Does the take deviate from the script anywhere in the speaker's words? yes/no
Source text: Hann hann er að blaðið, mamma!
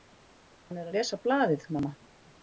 yes